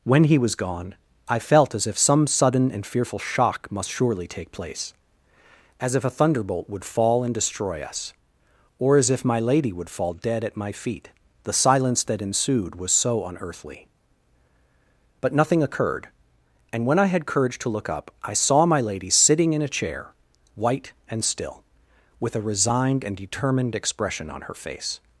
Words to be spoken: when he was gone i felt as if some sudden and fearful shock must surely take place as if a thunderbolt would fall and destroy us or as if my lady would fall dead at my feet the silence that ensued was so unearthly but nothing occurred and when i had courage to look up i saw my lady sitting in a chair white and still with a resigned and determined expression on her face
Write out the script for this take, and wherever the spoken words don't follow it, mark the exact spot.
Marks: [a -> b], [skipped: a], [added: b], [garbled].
when he was gone i felt as if some sudden and fearful shock must surely take place as if a thunderbolt would fall and destroy us or as if my lady would fall dead at my feet the silence that ensued was so unearthly but nothing occurred and when i had courage to look up i saw my lady sitting in a chair white and still with a resigned and determined expression on her face